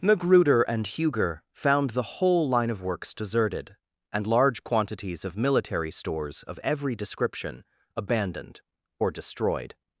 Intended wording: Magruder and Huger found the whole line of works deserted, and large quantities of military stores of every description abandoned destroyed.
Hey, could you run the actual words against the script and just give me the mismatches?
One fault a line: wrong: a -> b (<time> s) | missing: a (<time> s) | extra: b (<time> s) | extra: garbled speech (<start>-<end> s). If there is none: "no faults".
extra: or (9.0 s)